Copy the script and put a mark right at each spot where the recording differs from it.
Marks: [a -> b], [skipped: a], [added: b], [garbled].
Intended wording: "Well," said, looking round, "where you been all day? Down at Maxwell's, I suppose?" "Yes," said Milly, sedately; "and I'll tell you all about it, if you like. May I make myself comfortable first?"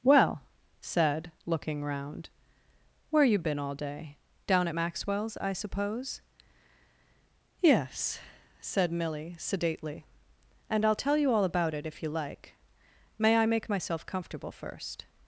"Well," said, looking round, "where you been all day? Down at Maxwell's, I suppose?" "Yes," said Milly, sedately; "and I'll tell you all about it, if you like. May I make myself comfortable first?"